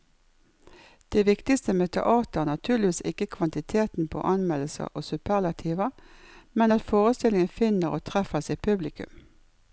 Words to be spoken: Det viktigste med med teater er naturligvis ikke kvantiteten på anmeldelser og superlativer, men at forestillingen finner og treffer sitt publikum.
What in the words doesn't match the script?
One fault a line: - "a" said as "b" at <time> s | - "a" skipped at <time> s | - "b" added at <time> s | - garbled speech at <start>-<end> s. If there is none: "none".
- "med" skipped at 1.9 s